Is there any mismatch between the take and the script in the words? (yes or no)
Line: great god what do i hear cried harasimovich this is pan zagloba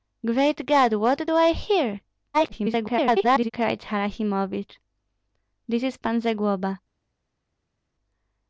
yes